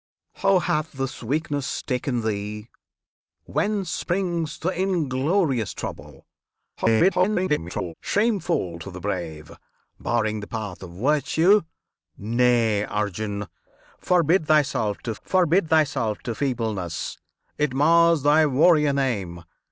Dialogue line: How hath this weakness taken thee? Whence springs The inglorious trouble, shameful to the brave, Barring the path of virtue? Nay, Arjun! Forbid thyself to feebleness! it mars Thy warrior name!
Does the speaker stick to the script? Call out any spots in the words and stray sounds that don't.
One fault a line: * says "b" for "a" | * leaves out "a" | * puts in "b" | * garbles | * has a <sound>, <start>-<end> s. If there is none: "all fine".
* garbles
* puts in "forbid thyself to"